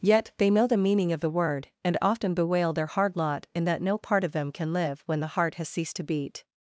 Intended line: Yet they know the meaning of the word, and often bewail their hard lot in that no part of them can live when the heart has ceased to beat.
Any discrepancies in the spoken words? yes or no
no